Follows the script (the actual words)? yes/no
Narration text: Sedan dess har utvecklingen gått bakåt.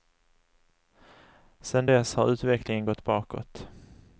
yes